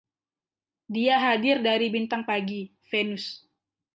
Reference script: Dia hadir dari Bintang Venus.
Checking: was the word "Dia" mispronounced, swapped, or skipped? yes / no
no